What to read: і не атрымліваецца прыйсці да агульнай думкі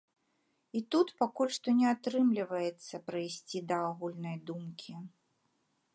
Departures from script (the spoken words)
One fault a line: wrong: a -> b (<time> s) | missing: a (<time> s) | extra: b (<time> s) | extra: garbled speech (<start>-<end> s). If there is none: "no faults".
extra: тут пакуль што (0.9 s)